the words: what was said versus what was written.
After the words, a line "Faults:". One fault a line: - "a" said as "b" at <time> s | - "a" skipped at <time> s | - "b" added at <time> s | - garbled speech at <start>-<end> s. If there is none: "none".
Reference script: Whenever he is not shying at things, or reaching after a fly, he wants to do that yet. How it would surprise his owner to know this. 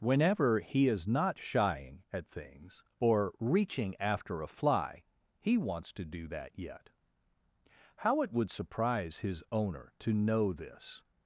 Whenever he is not shying at things, or reaching after a fly, he wants to do that yet. How it would surprise his owner to know this.
Faults:
none